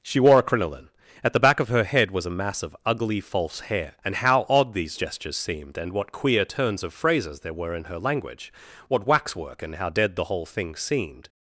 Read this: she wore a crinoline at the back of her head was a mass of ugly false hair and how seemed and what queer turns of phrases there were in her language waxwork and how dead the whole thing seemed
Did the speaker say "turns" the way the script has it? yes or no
yes